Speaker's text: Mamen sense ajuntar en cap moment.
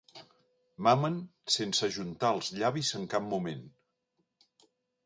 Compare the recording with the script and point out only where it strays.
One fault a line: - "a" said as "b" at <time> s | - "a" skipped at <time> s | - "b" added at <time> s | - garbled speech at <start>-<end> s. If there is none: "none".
- "els llavis" added at 2.4 s